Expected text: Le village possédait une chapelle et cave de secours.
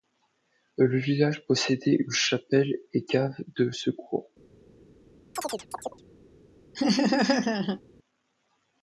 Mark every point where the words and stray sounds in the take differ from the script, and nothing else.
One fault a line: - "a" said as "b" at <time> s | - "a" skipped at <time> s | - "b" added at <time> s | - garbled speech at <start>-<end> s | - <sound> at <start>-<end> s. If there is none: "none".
- chirp at 5.4-6.0 s
- laugh at 6.7-7.8 s